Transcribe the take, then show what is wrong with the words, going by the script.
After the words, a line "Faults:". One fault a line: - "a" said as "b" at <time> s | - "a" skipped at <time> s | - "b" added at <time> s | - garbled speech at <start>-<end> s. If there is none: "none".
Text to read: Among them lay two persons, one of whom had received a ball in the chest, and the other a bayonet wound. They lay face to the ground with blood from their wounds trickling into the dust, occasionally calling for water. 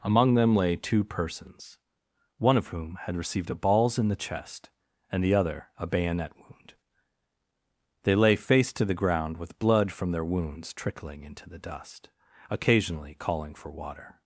Among them lay two persons, one of whom had received a balls in the chest, and the other a bayonet wound. They lay face to the ground with blood from their wounds trickling into the dust, occasionally calling for water.
Faults:
- "ball" said as "balls" at 3.5 s